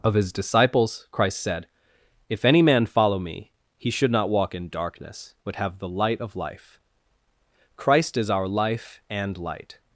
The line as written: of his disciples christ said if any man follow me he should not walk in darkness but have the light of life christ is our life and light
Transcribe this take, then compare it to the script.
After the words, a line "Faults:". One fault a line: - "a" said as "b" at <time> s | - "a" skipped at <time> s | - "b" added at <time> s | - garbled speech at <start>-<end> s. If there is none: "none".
of his disciples christ said if any man follow me he should not walk in darkness but have the light of life christ is our life and light
Faults:
none